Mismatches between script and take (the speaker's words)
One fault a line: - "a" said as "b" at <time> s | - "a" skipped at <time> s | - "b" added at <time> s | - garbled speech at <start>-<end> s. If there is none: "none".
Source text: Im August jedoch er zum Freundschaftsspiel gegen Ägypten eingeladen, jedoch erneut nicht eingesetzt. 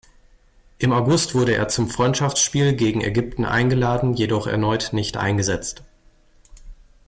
- "jedoch" said as "wurde" at 1.4 s